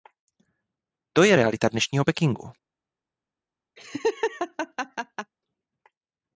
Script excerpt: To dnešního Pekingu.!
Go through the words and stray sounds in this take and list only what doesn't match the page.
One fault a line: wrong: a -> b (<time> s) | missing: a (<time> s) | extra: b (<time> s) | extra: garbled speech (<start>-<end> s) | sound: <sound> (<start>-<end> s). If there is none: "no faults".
extra: je realita (1.2 s)
sound: laugh (3.8-5.3 s)